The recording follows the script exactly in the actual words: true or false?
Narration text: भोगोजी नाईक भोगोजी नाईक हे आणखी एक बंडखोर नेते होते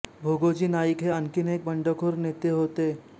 false